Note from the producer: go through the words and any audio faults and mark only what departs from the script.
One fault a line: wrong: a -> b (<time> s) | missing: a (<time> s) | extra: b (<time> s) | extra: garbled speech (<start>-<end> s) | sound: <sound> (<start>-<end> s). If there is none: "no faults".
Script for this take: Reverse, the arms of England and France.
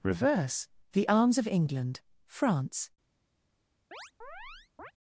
missing: and (2.0 s)
sound: chirp (3.9-4.9 s)